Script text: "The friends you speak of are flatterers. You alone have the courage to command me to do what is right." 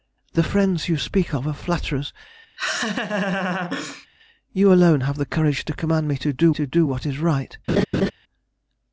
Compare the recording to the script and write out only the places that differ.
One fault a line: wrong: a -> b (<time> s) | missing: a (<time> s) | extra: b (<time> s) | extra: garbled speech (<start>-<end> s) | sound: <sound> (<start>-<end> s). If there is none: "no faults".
sound: laugh (2.6-4.1 s)
extra: to do (6.5 s)
sound: laugh (7.7-8.1 s)